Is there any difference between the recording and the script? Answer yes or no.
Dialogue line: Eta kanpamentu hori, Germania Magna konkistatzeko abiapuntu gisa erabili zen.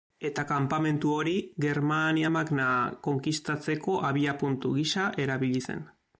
no